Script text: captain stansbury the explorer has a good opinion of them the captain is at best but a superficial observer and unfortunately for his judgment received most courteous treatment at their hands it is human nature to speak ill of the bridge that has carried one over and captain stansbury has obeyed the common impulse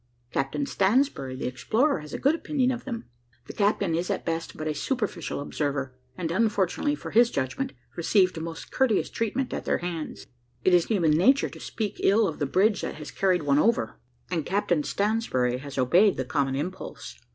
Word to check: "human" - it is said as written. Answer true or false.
true